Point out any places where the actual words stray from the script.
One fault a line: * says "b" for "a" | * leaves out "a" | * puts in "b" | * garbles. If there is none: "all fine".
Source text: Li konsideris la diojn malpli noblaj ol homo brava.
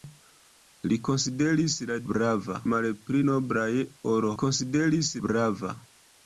* says "brava" for "diojn"
* says "konsideris" for "homo"